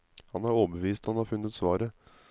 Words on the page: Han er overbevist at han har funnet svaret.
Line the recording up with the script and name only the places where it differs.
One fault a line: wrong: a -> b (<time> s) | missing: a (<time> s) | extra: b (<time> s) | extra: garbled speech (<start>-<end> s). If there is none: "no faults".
no faults